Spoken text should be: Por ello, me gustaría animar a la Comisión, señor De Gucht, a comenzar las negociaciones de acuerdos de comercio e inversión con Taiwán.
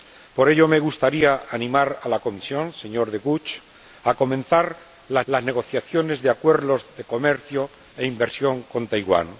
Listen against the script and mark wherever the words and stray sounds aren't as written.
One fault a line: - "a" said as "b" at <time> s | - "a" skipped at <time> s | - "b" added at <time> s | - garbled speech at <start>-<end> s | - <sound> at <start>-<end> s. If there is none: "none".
- "las" added at 5.3 s